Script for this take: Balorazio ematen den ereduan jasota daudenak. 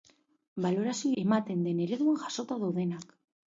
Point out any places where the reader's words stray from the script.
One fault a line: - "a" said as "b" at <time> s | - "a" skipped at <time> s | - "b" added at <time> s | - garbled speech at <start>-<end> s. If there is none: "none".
none